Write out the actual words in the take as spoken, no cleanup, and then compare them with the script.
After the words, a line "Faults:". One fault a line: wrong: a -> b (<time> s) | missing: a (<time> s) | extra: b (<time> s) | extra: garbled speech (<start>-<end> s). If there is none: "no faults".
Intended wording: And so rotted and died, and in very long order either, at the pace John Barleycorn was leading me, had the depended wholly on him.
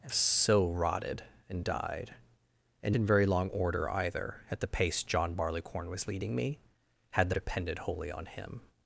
And so rotted and died, and in very long order either, at the pace John Barleycorn was leading me, had the depended wholly on him.
Faults:
no faults